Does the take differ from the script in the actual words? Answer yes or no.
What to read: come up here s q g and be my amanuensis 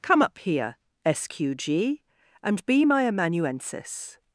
no